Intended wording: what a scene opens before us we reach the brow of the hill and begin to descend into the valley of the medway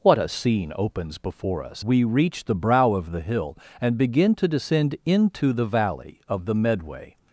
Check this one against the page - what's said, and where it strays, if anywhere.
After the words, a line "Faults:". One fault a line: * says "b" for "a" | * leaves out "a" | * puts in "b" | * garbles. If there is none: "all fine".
what a scene opens before us we reach the brow of the hill and begin to descend into the valley of the medway
Faults:
all fine